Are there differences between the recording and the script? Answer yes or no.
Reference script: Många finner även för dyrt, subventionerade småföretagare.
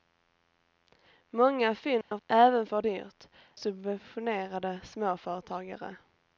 no